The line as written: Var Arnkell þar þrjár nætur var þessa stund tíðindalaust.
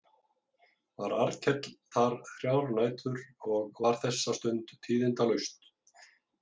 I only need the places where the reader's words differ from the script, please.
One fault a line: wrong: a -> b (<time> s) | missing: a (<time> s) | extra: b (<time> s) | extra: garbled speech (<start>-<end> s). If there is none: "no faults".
extra: og (3.6 s)